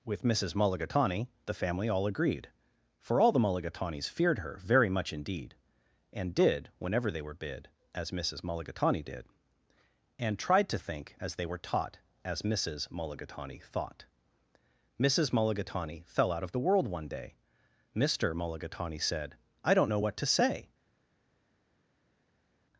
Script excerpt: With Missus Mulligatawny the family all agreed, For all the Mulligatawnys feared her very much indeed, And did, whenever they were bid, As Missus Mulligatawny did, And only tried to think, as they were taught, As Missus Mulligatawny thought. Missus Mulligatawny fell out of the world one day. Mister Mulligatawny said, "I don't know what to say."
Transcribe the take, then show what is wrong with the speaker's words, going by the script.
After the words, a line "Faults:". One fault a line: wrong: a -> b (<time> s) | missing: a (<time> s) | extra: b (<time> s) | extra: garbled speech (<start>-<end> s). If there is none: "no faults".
With Missus Mulligatawny the family all agreed, For all the Mulligatawnys feared her very much indeed, And did, whenever they were bid, As Missus Mulligatawny did, And tried to think, as they were taught, As Missus Mulligatawny thought. Missus Mulligatawny fell out of the world one day. Mister Mulligatawny said, "I don't know what to say."
Faults:
missing: only (10.4 s)